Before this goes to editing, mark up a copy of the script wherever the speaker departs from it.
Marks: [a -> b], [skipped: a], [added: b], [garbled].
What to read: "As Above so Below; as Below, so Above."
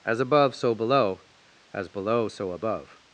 "As Above so Below; as Below, so Above."